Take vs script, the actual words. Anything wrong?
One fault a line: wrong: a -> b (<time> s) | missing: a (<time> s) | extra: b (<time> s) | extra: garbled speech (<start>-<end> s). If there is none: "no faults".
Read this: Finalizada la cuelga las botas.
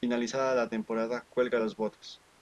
extra: temporada (0.7 s)